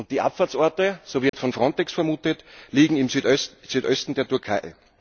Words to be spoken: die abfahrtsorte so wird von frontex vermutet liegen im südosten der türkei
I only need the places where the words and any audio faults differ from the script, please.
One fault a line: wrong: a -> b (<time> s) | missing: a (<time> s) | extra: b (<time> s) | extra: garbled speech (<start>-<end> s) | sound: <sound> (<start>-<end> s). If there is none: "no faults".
sound: dropout (1.3-1.3 s)